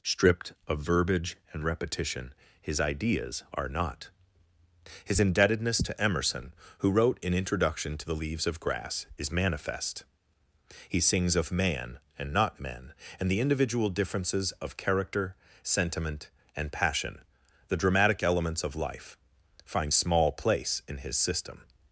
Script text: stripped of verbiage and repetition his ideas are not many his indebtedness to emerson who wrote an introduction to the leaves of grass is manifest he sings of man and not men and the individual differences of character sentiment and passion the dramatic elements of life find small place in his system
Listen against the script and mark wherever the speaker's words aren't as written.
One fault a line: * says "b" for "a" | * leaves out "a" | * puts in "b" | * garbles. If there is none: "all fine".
* leaves out "many"